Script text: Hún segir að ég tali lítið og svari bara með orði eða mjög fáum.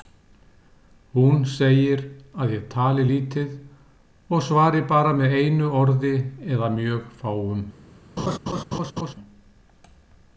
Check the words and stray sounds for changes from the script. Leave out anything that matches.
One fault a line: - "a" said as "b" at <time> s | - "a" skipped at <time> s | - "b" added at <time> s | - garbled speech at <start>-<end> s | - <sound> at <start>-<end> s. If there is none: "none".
- "einu" added at 5.4 s
- laugh at 8.2-9.1 s